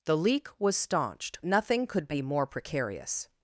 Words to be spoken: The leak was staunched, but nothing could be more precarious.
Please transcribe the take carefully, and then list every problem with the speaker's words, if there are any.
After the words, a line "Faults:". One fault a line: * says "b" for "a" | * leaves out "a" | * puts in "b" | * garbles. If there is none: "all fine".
The leak was staunched, nothing could be more precarious.
Faults:
* leaves out "but"